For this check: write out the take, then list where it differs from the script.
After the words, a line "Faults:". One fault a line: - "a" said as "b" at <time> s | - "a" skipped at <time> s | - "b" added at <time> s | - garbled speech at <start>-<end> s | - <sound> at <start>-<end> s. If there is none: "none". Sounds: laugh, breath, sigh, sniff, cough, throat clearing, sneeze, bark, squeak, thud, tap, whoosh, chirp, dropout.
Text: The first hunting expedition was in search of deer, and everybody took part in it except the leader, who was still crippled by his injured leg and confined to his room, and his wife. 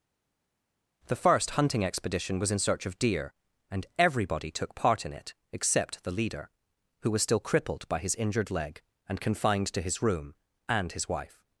The first hunting expedition was in search of deer, and everybody took part in it except the leader, who was still crippled by his injured leg and confined to his room, and his wife.
Faults:
none